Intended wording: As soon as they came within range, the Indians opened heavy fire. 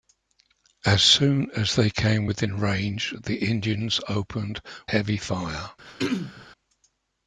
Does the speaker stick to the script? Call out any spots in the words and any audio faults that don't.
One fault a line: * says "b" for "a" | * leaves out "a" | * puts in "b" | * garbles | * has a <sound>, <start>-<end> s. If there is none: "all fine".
* has a throat clearing, 5.8-6.5 s